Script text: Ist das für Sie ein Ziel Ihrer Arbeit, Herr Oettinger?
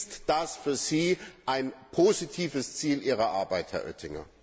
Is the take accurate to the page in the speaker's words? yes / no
no